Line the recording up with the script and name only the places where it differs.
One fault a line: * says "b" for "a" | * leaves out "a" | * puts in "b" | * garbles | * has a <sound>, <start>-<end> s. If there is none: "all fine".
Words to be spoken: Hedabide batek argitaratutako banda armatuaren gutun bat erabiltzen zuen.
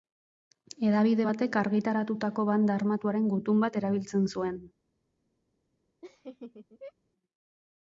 * has a laugh, 6.0-6.9 s